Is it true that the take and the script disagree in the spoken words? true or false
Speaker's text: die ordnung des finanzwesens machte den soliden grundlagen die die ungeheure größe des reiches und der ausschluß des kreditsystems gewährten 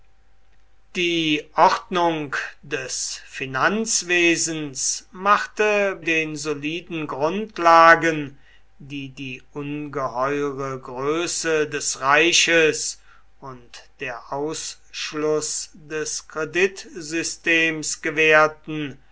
false